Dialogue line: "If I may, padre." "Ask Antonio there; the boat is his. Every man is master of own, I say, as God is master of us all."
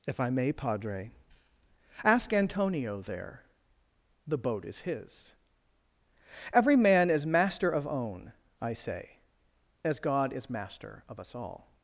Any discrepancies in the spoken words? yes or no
no